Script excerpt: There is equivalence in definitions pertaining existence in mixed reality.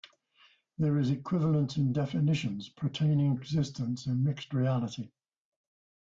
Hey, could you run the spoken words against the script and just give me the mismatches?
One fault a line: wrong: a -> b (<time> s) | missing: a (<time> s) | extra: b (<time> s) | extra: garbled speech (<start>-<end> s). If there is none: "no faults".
no faults